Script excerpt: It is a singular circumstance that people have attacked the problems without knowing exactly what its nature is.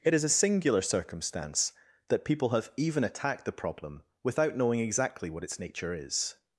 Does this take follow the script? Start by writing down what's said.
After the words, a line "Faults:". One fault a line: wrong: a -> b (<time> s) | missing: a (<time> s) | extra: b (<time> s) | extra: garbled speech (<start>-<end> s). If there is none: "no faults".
It is a singular circumstance that people have even attacked the problem without knowing exactly what its nature is.
Faults:
extra: even (2.8 s)
wrong: problems -> problem (3.5 s)